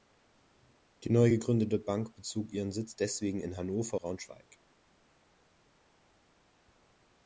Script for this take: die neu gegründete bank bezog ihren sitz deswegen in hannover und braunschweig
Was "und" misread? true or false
true